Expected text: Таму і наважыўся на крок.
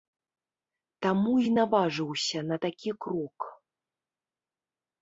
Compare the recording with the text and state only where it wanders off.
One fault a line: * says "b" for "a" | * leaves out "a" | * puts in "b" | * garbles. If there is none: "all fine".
* puts in "такі"